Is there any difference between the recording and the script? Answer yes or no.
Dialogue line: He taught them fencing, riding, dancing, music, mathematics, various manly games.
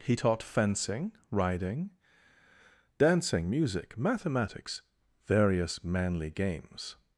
yes